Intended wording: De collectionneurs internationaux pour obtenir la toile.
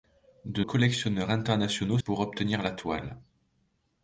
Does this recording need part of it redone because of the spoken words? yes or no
no